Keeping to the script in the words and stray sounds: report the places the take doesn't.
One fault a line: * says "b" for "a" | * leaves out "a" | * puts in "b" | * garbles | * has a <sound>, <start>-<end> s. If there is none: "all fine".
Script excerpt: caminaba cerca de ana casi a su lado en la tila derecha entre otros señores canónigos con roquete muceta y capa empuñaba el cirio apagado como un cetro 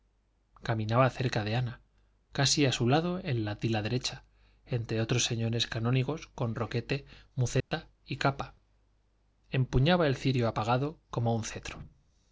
* has a dropout, 7.6-7.7 s